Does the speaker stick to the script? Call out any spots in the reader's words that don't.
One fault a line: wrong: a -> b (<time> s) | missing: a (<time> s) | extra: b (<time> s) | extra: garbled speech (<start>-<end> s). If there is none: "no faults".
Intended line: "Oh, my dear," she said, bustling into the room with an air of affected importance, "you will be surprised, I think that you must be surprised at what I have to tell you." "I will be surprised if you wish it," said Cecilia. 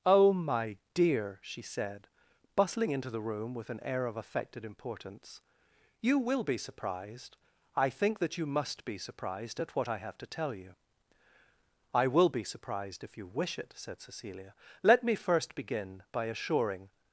extra: Let me first begin by assuring (14.8 s)